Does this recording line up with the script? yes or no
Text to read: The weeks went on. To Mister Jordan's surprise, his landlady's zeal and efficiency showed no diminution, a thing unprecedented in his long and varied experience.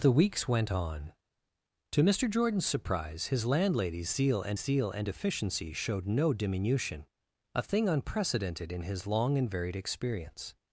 no